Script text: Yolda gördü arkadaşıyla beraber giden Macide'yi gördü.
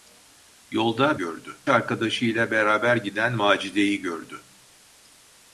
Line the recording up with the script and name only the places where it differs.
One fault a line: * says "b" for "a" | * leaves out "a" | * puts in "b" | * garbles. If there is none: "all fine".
all fine